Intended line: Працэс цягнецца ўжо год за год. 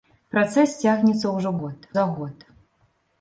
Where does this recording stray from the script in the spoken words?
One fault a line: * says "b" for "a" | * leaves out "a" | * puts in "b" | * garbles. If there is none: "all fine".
all fine